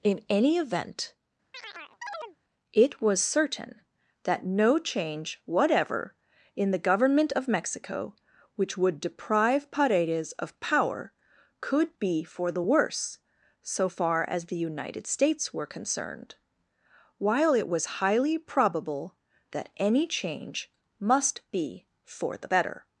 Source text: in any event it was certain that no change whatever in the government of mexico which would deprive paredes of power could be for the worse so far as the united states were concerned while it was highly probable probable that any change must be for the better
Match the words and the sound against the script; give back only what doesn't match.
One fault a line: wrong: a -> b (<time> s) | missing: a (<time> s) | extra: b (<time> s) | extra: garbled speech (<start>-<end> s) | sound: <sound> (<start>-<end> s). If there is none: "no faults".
sound: chirp (1.5-2.4 s)
missing: probable (19.1 s)